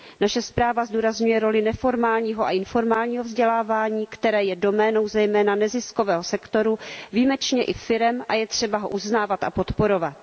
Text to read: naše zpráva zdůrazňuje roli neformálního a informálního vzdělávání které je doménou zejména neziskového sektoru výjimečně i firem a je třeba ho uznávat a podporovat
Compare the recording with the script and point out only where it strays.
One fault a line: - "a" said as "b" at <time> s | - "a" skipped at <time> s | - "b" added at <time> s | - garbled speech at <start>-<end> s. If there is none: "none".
none